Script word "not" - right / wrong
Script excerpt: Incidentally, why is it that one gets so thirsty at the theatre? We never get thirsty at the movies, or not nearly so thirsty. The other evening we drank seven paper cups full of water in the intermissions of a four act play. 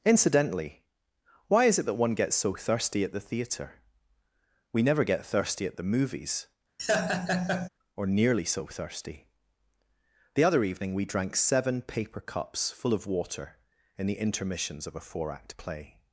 wrong